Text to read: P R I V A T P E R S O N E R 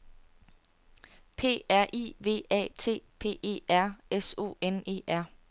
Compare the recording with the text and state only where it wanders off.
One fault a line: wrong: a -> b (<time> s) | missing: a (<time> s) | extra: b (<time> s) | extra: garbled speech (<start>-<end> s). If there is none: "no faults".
no faults